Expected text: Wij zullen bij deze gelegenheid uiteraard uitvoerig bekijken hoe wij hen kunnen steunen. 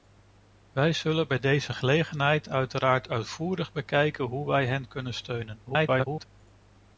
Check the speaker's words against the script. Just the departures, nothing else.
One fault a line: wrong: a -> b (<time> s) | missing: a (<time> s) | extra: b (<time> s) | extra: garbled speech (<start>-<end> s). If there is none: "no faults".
extra: garbled speech (5.7-6.3 s)